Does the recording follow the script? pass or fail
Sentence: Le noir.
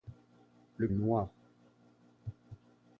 pass